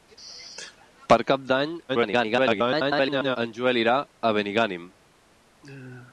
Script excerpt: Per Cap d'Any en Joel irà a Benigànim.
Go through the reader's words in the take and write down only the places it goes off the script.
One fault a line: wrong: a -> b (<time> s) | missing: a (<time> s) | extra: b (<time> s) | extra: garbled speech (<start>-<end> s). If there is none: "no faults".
extra: garbled speech (1.9-3.4 s)